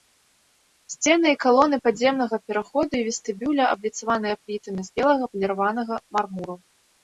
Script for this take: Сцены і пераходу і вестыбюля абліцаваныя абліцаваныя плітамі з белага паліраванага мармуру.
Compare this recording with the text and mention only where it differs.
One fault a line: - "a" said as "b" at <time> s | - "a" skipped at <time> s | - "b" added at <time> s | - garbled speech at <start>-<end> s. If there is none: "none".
- "калоны падземнага" added at 1.4 s
- "абліцаваныя" skipped at 4.3 s